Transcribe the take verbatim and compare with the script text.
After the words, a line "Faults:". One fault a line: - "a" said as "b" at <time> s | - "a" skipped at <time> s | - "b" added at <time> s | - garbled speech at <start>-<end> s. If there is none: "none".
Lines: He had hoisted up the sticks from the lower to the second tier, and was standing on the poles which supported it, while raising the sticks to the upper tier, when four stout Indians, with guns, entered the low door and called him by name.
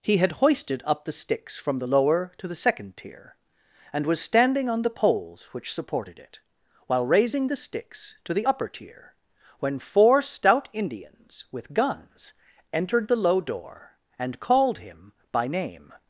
He had hoisted up the sticks from the lower to the second tier, and was standing on the poles which supported it, while raising the sticks to the upper tier, when four stout Indians, with guns, entered the low door and called him by name.
Faults:
none